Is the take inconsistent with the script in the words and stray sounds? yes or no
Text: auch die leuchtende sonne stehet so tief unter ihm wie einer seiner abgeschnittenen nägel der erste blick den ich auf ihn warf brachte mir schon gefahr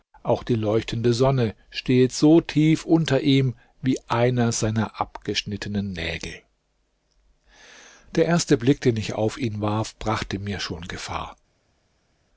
no